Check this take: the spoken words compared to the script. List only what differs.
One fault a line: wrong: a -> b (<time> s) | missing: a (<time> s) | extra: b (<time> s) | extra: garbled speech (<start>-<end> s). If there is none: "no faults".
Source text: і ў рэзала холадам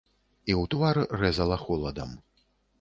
extra: твар (0.7 s)